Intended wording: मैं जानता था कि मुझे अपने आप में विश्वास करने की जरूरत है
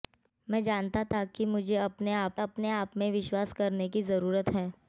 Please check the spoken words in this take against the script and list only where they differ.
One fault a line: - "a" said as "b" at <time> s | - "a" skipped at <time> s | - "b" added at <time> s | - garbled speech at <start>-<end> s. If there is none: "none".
- "अपने आप" added at 2.4 s